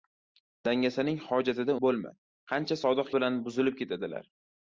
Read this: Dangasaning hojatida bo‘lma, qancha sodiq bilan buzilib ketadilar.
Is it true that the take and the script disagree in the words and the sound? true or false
false